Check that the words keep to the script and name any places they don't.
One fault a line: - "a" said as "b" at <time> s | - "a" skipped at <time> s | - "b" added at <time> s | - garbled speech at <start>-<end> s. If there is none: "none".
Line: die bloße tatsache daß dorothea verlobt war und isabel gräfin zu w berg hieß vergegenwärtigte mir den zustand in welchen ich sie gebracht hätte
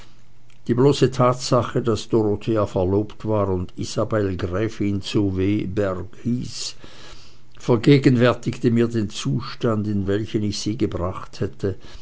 none